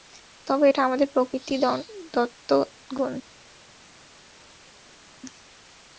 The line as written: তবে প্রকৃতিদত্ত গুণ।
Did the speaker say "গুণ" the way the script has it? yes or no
yes